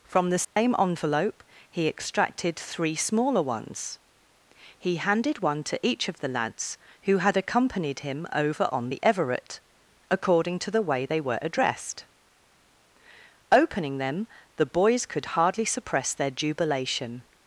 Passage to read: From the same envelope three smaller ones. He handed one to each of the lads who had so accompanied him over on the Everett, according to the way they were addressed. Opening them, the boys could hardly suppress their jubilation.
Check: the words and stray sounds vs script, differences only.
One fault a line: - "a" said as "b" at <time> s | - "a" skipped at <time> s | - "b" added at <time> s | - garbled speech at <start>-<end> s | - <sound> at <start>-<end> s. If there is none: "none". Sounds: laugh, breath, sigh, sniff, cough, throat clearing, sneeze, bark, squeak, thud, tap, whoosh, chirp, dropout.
- dropout at 0.4-0.6 s
- "he extracted" added at 1.7 s
- "so" skipped at 7.4 s